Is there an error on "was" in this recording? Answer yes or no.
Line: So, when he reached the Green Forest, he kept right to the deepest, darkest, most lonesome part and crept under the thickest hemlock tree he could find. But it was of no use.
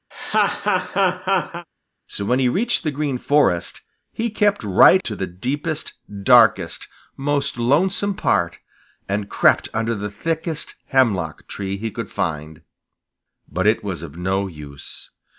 no